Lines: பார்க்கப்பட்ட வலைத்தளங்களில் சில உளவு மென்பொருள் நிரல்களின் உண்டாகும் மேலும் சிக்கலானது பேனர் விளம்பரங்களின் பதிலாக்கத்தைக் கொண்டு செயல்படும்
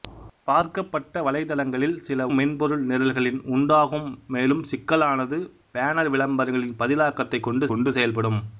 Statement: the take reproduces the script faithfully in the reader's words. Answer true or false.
false